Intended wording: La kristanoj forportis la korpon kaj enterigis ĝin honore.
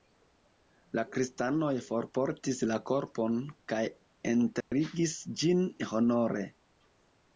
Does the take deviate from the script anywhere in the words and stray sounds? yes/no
yes